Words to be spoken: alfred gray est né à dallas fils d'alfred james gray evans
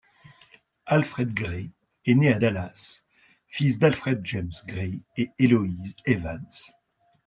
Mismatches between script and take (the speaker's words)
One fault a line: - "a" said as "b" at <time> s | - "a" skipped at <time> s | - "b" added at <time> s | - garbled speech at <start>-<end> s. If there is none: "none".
- "et eloise" added at 5.2 s